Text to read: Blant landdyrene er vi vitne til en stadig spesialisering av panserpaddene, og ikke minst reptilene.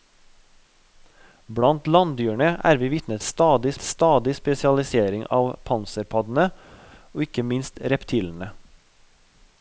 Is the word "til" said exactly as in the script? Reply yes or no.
no